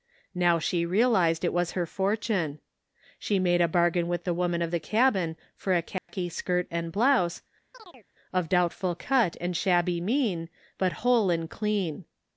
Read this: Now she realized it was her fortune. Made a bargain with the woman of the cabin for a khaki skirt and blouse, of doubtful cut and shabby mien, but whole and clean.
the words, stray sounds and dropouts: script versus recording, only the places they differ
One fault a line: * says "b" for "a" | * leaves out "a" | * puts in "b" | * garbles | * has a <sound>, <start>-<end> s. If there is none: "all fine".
* puts in "She"
* has a dropout, 6.0-6.1 s
* has a chirp, 7.7-8.1 s